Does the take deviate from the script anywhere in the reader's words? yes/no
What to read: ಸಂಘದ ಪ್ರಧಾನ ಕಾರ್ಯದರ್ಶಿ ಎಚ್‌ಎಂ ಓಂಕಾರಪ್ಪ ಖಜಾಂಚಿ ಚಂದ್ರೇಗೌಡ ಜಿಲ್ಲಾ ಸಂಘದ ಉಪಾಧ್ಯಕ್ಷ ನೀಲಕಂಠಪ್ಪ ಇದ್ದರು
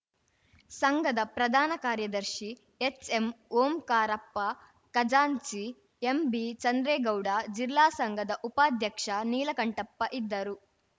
yes